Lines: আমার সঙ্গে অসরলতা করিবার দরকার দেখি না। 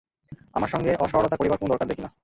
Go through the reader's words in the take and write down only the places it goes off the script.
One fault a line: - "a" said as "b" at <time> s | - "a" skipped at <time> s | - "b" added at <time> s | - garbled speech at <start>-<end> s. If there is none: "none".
- "কোনো" added at 1.6 s